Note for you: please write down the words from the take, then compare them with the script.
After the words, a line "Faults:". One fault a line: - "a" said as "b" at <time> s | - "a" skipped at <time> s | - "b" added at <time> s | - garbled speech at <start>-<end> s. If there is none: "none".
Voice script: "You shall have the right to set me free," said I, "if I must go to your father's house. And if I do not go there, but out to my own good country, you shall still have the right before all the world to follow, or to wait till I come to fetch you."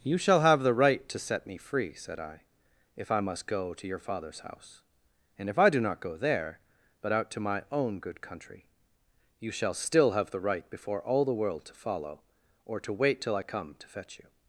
"You shall have the right to set me free," said I, "if I must go to your father's house. And if I do not go there, but out to my own good country, you shall still have the right before all the world to follow, or to wait till I come to fetch you."
Faults:
none